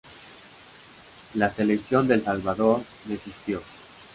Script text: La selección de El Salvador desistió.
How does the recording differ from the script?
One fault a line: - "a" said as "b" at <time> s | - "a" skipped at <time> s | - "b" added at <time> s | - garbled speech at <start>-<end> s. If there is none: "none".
none